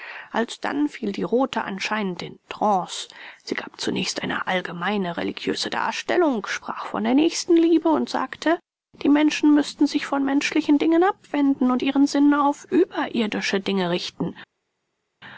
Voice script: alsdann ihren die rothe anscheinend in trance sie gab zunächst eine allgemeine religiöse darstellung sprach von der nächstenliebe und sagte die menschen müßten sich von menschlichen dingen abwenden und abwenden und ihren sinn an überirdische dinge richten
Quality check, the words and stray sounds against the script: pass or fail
fail